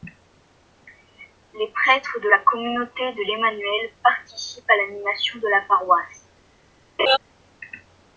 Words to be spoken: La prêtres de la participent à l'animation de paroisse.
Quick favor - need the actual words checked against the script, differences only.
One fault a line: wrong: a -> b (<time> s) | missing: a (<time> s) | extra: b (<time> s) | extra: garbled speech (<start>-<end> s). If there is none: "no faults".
wrong: La -> Les (1.5 s)
extra: communauté de l'Emmanuel (2.4 s)
extra: la (5.5 s)